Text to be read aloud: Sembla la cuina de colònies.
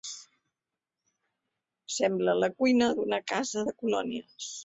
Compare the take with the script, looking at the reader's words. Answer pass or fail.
fail